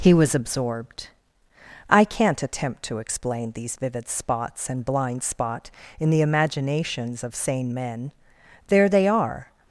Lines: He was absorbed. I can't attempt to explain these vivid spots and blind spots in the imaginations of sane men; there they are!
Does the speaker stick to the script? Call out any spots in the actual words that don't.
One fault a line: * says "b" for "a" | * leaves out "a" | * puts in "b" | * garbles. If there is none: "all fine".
* says "spot" for "spots"